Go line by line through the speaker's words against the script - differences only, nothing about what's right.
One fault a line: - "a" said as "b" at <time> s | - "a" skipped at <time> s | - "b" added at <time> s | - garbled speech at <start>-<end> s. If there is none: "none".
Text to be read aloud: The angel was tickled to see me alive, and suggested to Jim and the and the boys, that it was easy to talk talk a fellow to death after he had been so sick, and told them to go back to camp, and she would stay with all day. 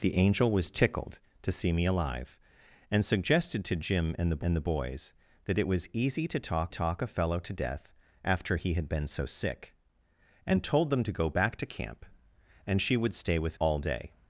none